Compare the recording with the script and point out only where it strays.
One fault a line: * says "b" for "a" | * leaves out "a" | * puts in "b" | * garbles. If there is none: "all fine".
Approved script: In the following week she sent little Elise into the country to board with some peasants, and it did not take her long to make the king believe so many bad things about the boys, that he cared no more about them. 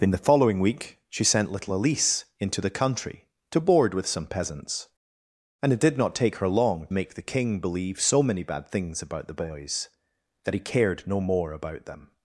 * leaves out "to"